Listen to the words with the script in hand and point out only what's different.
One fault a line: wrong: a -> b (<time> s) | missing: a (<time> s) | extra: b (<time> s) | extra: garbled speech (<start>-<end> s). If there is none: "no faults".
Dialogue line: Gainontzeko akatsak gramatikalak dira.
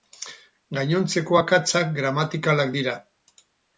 no faults